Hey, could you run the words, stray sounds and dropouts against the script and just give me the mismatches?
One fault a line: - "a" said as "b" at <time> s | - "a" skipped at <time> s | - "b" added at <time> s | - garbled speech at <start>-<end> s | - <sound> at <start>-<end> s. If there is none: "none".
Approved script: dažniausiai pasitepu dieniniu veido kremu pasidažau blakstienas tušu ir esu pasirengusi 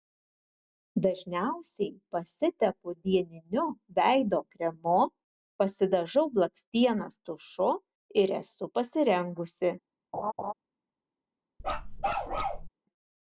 - laugh at 10.1-10.5 s
- bark at 11.6-12.7 s